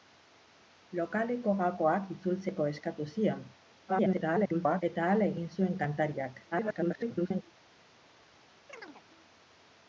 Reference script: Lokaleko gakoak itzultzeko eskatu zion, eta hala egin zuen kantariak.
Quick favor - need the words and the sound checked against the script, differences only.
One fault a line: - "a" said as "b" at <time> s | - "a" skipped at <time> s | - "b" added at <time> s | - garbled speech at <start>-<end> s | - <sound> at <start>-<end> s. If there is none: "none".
- garbled speech at 3.9-4.8 s
- garbled speech at 6.5-7.4 s
- chirp at 8.7-9.0 s